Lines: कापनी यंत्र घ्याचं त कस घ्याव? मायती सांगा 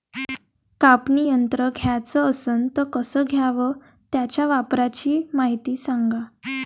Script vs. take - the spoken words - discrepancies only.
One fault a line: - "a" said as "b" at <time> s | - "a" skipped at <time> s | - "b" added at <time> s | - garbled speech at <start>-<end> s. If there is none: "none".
- "असन" added at 2.3 s
- "त्याच्या वापराची" added at 4.1 s